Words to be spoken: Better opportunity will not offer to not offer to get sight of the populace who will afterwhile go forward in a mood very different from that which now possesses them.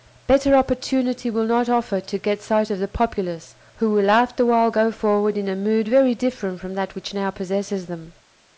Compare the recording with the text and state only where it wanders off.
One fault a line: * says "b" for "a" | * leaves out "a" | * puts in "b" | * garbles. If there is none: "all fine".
* leaves out "not offer to"